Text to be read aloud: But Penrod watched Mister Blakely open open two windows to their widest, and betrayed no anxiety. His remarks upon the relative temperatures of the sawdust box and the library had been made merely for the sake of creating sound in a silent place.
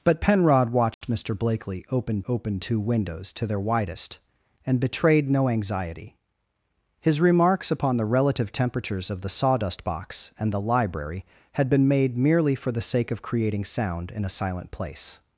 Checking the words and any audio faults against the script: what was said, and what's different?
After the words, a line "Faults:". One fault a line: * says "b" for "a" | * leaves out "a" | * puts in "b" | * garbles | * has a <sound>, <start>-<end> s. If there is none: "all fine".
But Penrod watched Mister Blakely open open two windows to their widest, and betrayed no anxiety. His remarks upon the relative temperatures of the sawdust box and the library had been made merely for the sake of creating sound in a silent place.
Faults:
* has a dropout, 0.9-1.0 s